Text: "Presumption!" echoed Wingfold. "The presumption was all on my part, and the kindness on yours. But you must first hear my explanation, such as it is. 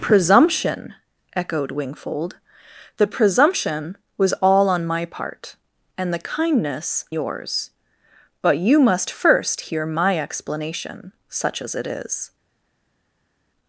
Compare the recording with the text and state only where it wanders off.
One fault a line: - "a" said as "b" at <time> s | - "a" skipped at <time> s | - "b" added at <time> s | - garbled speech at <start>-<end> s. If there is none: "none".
- "on" skipped at 7.0 s